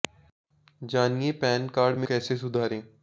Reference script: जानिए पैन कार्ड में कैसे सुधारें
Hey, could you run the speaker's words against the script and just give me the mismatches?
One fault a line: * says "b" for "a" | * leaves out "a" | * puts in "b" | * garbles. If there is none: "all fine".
all fine